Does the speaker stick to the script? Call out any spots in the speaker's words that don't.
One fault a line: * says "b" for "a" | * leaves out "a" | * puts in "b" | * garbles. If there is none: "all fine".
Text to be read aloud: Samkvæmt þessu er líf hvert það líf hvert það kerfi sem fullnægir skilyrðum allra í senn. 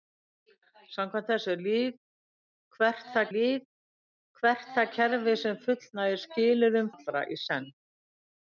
all fine